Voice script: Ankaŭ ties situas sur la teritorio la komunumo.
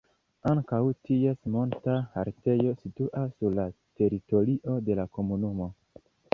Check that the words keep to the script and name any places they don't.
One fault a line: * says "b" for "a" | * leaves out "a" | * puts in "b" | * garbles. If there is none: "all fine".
* puts in "monta haltejo"
* puts in "de"